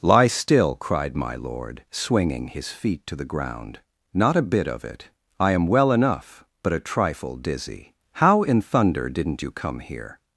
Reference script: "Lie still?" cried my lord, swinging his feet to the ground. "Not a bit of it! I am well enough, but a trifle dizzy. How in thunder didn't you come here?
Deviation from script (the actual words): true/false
false